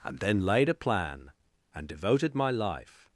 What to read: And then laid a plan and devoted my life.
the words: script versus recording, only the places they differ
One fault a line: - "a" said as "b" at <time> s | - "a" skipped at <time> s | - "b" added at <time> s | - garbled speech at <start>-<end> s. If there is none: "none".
none